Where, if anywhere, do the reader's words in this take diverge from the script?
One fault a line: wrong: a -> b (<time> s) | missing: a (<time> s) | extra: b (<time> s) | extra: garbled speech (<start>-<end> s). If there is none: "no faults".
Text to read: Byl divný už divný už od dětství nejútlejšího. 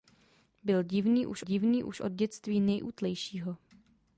no faults